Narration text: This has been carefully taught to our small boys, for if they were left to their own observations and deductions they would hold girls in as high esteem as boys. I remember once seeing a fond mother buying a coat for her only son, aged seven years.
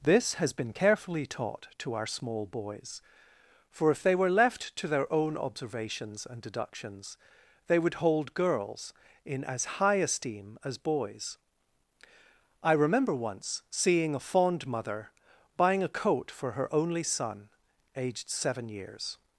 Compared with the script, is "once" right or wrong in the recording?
right